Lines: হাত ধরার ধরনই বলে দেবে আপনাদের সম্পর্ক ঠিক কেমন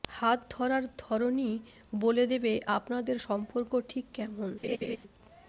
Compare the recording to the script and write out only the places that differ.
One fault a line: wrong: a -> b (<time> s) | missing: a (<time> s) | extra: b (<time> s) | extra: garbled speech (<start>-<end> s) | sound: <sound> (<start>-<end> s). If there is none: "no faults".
sound: laugh (4.6-5.0 s)